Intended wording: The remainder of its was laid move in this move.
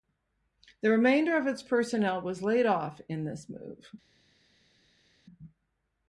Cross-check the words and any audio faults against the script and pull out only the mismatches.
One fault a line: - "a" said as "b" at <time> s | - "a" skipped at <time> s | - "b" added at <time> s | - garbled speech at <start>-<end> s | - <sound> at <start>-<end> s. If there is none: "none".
- "personnel" added at 1.6 s
- "move" said as "off" at 2.6 s